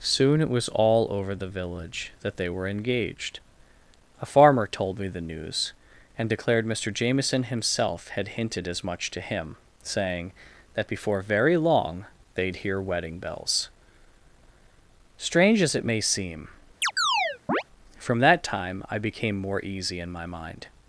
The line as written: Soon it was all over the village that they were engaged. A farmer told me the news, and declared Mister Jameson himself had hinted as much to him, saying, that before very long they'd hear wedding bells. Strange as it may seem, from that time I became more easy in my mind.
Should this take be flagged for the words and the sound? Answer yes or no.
yes